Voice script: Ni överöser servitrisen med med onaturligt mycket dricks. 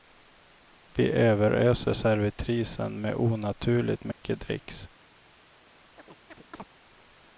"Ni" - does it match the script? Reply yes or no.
no